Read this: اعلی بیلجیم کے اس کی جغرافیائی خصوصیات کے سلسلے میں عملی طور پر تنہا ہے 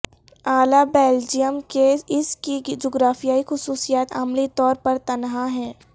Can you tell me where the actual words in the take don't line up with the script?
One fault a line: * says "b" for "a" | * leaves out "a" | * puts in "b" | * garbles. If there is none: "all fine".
* leaves out "کے سلسلے میں"